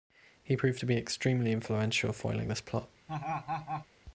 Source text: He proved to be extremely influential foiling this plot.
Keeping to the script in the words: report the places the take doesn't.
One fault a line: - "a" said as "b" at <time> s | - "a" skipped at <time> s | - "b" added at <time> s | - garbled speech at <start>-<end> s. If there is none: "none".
none